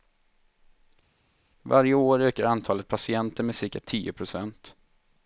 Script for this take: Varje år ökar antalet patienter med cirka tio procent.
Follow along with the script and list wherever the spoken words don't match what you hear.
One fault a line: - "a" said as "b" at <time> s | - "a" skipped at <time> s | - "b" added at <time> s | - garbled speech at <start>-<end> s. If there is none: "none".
none